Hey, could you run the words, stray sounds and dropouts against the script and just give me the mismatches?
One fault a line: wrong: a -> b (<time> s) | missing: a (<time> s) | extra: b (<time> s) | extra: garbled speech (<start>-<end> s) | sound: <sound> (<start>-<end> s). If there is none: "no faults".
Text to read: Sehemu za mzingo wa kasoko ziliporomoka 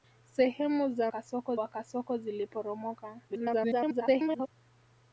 wrong: mzingo -> kasoko (1.1 s)
extra: garbled speech (3.3-4.5 s)